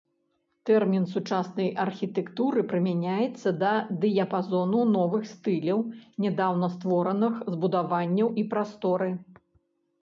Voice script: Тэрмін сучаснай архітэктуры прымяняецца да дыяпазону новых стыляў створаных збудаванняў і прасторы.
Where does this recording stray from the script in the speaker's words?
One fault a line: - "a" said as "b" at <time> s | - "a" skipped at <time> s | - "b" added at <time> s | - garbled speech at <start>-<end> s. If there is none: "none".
- "нядаўна" added at 6.3 s